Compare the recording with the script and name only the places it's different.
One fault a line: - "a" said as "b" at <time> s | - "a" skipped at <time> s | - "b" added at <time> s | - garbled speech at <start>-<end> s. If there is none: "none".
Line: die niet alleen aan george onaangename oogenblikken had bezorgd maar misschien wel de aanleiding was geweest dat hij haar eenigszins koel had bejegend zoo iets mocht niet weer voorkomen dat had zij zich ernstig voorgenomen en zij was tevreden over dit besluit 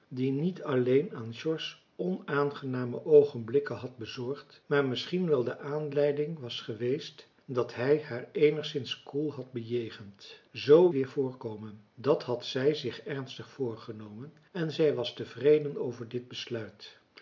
- "iets mocht niet" skipped at 10.9 s